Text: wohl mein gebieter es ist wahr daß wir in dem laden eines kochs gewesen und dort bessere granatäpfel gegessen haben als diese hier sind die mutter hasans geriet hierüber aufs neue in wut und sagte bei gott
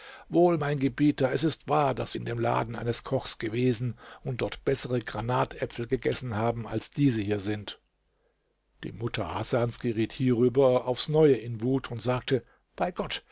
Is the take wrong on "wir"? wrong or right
wrong